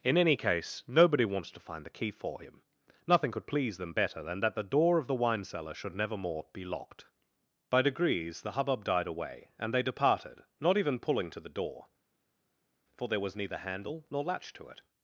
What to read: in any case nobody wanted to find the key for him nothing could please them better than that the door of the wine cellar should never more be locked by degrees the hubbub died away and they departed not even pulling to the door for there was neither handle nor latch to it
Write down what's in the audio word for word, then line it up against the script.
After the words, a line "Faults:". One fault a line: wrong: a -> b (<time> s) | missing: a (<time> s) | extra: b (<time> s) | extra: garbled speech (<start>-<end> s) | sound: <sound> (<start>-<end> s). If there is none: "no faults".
in any case nobody wants to find the key for him nothing could please them better than that the door of the wine cellar should never more be locked by degrees the hubbub died away and they departed not even pulling to the door for there was neither handle nor latch to it
Faults:
wrong: wanted -> wants (1.2 s)